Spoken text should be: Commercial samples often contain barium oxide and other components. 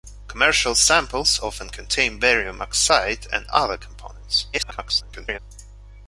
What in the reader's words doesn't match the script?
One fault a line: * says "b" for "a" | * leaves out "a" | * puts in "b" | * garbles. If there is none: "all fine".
* garbles